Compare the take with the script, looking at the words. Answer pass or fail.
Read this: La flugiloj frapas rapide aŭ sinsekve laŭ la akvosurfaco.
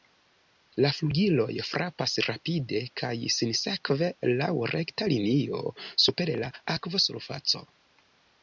fail